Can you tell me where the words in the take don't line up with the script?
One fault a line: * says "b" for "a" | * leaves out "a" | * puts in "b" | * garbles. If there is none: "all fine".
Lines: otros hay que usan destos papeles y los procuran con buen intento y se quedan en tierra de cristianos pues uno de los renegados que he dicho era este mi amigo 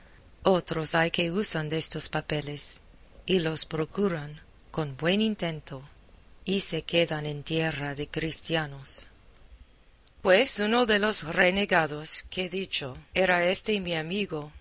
all fine